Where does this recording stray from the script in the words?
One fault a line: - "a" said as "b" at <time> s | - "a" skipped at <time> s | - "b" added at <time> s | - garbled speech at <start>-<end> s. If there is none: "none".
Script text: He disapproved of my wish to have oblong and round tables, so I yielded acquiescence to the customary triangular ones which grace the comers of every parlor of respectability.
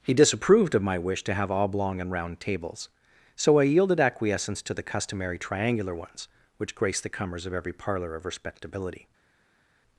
none